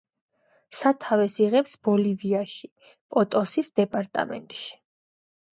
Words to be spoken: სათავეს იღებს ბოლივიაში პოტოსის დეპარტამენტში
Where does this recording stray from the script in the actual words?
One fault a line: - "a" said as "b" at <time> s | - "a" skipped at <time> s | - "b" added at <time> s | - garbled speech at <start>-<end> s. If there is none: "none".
none